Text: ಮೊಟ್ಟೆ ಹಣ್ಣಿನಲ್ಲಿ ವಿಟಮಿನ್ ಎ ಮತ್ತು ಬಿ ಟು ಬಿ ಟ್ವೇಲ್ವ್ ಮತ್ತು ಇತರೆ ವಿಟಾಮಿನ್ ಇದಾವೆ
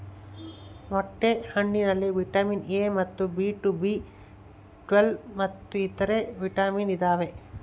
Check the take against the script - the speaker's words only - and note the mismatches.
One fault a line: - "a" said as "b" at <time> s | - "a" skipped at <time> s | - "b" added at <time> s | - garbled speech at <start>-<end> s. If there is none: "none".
none